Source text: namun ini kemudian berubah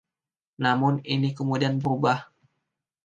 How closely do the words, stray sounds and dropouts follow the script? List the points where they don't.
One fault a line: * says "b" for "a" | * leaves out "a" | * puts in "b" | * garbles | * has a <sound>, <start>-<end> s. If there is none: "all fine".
all fine